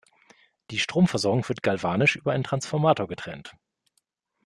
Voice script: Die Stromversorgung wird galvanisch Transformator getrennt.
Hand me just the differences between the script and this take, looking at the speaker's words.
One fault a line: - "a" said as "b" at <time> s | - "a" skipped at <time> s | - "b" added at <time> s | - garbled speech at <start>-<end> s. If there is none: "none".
- "über einen" added at 2.1 s